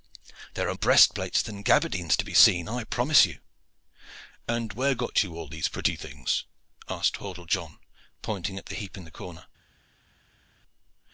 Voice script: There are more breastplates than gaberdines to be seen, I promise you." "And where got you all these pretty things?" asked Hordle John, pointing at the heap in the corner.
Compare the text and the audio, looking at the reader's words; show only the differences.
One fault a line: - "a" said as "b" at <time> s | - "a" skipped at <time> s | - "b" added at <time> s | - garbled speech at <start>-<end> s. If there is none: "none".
- "more" skipped at 0.7 s